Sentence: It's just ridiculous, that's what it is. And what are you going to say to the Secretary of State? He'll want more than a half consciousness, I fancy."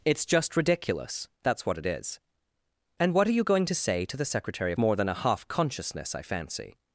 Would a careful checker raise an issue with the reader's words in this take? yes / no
yes